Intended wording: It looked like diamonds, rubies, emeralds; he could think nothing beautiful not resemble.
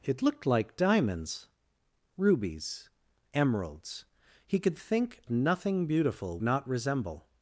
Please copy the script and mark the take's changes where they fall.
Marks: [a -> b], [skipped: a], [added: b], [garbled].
It looked like diamonds, rubies, emeralds; he could think nothing beautiful not resemble.